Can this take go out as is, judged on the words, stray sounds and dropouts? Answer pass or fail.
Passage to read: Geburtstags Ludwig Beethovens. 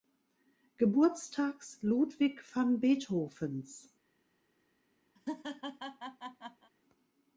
fail